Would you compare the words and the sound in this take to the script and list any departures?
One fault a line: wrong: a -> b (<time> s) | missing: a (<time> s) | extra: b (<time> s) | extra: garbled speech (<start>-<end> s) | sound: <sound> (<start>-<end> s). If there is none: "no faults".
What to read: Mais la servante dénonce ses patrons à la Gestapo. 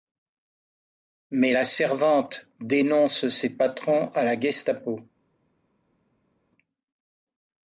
no faults